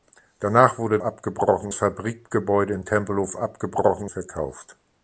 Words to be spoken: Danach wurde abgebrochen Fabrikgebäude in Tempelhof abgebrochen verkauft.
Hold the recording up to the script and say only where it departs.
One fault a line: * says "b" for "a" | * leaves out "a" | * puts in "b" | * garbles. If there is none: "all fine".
all fine